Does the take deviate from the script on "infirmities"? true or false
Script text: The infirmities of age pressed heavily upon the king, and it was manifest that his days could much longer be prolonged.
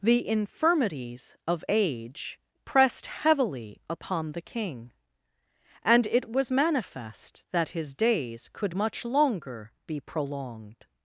false